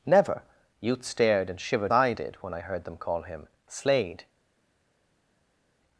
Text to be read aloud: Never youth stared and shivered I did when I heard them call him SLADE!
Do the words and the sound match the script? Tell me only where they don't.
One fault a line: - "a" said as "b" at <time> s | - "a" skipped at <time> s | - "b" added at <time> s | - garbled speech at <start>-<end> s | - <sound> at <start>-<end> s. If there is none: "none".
none